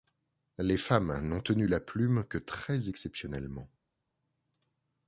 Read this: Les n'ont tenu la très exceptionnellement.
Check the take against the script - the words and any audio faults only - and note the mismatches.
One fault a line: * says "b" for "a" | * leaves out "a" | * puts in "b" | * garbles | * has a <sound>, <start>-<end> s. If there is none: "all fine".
* puts in "femmes"
* puts in "plume que"